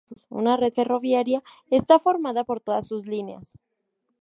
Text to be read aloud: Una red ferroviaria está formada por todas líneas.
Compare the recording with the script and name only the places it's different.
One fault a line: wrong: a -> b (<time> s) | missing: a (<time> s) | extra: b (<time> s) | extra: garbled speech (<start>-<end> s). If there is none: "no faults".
extra: sus (2.8 s)